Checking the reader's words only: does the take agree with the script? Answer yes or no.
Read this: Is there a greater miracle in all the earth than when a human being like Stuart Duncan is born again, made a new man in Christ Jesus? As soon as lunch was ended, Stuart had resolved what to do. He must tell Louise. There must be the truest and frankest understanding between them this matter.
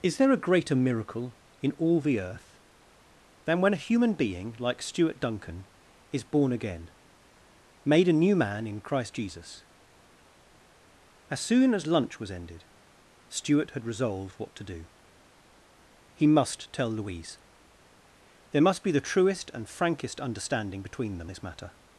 yes